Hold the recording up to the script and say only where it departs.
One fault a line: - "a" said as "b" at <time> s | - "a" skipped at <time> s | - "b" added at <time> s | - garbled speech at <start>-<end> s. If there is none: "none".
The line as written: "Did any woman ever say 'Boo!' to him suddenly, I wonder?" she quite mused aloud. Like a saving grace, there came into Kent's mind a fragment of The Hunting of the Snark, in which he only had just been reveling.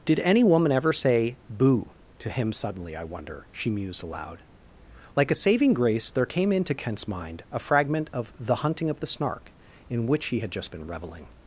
- "quite" skipped at 3.7 s
- "only" skipped at 10.4 s